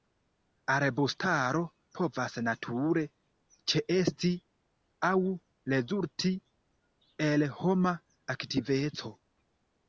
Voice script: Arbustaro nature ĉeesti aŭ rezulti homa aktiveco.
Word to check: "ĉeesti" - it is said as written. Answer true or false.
true